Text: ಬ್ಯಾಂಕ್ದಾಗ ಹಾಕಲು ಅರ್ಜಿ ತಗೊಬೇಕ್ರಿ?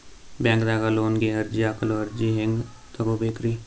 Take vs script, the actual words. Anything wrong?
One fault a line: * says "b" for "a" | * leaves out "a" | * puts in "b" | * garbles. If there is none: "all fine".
* puts in "ಲೋನ್ ಗೆ ಅರ್ಜಿ"
* puts in "ಹೆಂಗ್"